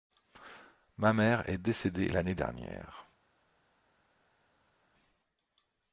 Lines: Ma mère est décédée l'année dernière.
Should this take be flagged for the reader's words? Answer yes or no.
no